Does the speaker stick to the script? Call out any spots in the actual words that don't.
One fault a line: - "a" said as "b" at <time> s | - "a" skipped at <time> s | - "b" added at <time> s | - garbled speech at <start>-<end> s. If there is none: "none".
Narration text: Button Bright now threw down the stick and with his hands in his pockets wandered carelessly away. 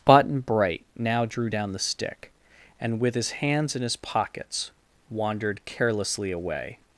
- "threw" said as "drew" at 1.2 s